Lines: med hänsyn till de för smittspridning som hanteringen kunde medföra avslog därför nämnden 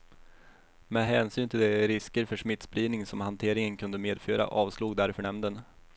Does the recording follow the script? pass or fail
fail